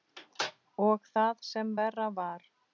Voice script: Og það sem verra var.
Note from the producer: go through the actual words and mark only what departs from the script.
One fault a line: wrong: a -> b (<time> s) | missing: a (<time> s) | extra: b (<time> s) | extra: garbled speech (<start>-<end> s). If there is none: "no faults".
no faults